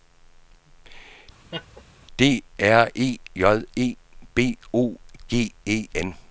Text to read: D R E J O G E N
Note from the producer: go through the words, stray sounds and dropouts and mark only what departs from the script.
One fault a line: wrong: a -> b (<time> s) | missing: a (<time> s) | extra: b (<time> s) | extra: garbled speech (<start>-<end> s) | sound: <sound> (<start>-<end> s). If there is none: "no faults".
sound: laugh (1.5-1.8 s)
extra: E B (3.8 s)